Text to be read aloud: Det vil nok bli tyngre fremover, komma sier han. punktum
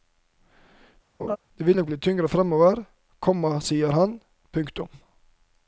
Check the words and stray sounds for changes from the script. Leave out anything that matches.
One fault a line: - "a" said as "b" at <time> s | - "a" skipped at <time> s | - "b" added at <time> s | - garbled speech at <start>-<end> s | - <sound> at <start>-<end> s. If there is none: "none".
- laugh at 1.2-1.4 s